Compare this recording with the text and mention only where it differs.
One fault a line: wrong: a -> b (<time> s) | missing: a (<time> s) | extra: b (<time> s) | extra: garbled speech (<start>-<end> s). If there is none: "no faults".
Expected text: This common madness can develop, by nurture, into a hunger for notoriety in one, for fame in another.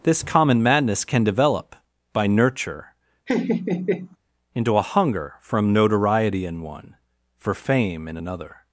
wrong: for -> from (5.4 s)